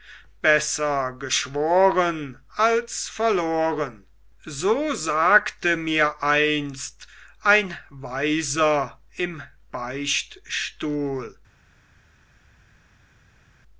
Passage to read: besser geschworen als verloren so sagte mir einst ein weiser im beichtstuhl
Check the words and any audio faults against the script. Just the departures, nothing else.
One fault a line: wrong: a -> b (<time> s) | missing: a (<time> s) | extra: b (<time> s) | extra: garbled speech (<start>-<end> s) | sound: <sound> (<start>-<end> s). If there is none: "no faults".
no faults